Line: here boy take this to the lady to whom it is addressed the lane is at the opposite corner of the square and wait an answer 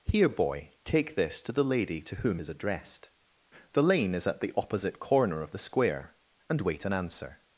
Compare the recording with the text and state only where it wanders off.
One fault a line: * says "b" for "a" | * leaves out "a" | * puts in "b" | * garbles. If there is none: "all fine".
* leaves out "it"